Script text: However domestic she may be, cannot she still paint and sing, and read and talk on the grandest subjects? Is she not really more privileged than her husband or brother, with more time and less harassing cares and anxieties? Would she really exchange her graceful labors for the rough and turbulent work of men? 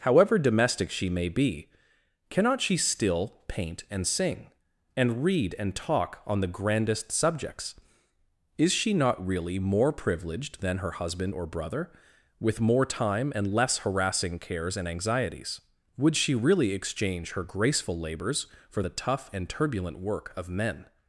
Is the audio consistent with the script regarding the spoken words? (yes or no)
no